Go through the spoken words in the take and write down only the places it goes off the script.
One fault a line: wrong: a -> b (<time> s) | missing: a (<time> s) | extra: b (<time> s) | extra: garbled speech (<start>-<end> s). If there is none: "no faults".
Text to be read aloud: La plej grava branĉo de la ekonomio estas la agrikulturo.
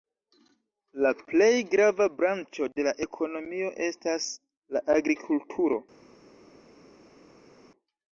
no faults